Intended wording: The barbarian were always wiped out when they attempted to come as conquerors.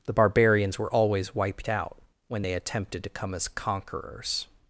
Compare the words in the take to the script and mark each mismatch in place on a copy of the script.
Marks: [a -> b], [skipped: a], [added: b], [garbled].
The [barbarian -> barbarians] were always wiped out when they attempted to come as conquerors.